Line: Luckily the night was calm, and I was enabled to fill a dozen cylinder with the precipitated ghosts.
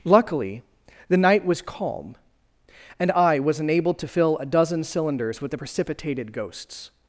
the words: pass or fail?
fail